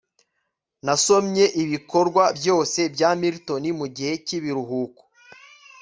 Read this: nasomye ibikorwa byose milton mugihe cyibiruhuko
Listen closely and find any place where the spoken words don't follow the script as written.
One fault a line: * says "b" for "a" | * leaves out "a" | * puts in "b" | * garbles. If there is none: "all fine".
* puts in "bya"